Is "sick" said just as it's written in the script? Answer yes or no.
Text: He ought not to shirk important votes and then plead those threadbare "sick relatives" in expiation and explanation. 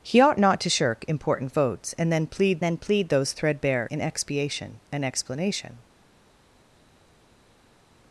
no